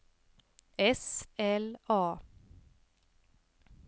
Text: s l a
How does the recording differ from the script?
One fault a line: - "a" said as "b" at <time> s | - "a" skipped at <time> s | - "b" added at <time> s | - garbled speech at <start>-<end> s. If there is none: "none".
none